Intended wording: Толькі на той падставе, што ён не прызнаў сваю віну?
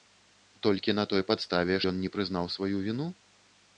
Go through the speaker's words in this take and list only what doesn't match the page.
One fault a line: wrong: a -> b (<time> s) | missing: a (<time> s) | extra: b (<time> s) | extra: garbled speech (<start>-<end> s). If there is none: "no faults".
missing: што (1.8 s)